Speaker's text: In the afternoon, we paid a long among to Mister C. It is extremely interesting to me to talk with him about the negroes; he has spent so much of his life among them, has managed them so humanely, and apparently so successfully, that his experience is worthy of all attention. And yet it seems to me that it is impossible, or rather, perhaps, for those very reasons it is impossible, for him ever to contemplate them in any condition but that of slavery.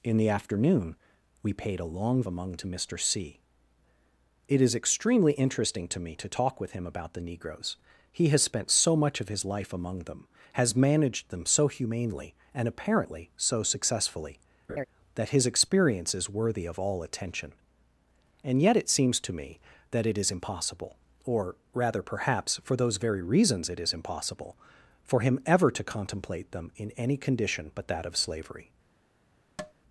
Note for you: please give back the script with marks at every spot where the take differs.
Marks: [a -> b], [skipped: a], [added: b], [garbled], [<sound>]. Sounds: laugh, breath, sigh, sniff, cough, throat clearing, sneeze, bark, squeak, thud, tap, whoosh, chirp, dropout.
In the afternoon, we paid a long among to Mister C. It is extremely interesting to me to talk with him about the negroes; he has spent so much of his life among them, has managed them so humanely, and apparently so successfully, [laugh] that his experience is worthy of all attention. And yet it seems to me that it is impossible, or rather, perhaps, for those very reasons it is impossible, for him ever to contemplate them in any condition but that of slavery. [tap]